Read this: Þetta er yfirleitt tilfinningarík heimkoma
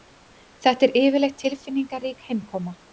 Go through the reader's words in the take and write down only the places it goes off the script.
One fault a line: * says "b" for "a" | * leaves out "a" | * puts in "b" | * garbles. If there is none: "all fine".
all fine